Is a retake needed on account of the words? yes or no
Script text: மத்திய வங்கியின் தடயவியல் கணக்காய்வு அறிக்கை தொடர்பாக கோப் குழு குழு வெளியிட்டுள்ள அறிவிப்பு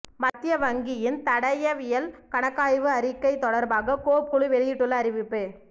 yes